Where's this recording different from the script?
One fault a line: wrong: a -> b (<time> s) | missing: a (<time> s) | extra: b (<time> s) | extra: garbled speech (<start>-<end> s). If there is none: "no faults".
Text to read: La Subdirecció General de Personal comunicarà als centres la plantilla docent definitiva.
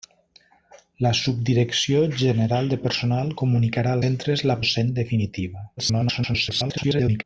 missing: als (4.0 s)
missing: plantilla (4.6 s)
extra: garbled speech (5.8-7.2 s)